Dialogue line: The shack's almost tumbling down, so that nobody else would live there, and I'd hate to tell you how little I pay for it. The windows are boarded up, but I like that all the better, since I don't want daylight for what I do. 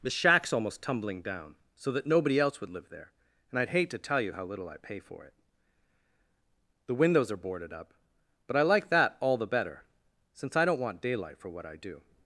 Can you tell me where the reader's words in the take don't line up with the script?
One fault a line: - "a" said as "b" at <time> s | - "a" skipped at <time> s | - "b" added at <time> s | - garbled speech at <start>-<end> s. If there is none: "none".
none